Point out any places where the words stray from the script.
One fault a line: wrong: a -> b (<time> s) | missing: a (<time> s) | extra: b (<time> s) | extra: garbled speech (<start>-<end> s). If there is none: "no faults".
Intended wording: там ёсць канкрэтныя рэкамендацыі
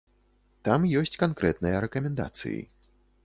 no faults